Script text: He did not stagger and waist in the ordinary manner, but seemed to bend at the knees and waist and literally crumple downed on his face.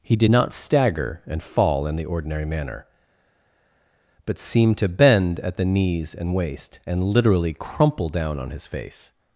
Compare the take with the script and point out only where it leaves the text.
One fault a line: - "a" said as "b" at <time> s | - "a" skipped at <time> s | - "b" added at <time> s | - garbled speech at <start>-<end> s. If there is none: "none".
- "waist" said as "fall" at 1.4 s
- "downed" said as "down" at 8.1 s